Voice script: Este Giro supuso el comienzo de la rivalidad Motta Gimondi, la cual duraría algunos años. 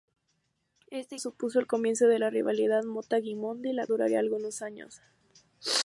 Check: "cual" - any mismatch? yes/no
yes